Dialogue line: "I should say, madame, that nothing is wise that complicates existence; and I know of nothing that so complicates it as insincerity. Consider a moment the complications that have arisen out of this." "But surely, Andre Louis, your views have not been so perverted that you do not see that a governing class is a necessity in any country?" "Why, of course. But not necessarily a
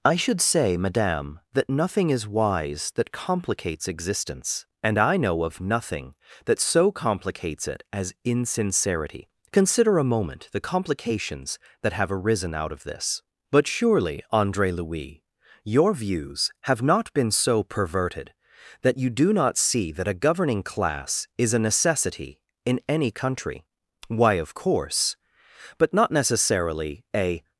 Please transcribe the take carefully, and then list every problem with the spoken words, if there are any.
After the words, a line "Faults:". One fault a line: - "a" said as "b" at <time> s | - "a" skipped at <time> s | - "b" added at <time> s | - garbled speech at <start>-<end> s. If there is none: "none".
"I should say, madame, that nothing is wise that complicates existence; and I know of nothing that so complicates it as insincerity. Consider a moment the complications that have arisen out of this." "But surely, Andre Louis, your views have not been so perverted that you do not see that a governing class is a necessity in any country?" "Why, of course. But not necessarily a
Faults:
none